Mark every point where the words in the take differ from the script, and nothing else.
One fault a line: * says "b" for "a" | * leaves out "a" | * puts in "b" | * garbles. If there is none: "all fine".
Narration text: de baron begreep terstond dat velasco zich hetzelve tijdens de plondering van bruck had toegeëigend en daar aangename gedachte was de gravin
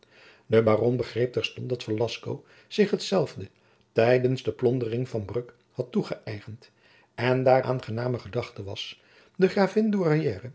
all fine